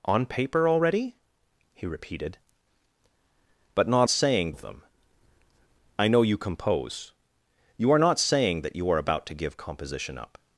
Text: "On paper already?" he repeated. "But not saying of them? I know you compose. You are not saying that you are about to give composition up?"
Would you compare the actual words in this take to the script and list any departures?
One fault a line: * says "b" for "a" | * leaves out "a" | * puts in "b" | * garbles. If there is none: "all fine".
all fine